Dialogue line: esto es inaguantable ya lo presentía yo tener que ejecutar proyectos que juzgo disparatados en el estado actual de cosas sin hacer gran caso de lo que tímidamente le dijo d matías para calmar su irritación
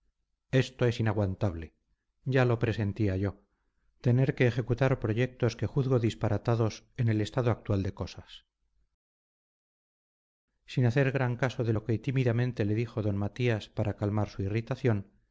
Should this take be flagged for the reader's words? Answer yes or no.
no